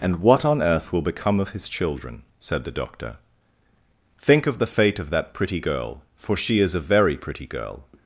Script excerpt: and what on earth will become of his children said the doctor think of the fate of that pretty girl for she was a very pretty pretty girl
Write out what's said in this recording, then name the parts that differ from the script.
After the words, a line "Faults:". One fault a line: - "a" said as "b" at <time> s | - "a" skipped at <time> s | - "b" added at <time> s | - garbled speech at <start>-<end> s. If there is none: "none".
and what on earth will become of his children said the doctor think of the fate of that pretty girl for she is a very pretty girl
Faults:
- "was" said as "is" at 6.6 s
- "pretty" skipped at 7.5 s